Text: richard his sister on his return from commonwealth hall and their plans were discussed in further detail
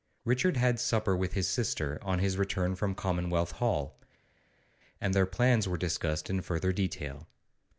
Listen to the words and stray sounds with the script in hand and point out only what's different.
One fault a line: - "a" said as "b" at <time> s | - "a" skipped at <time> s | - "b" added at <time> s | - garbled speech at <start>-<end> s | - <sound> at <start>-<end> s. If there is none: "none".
- "had supper with" added at 0.6 s